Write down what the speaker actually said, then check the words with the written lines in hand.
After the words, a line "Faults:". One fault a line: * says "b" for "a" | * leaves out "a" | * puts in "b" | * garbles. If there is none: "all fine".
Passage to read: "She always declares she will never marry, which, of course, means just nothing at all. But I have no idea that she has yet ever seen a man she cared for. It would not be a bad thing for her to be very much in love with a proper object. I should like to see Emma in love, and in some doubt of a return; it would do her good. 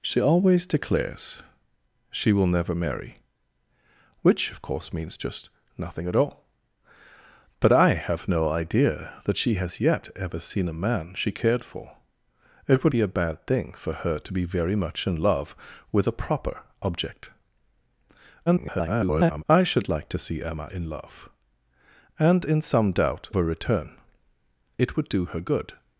"She always declares she will never marry, which, of course, means just nothing at all. But I have no idea that she has yet ever seen a man she cared for. It would be a bad thing for her to be very much in love with a proper object. [garbled] I should like to see Emma in love, and in some doubt a return; it would do her good.
Faults:
* leaves out "not"
* garbles
* leaves out "of"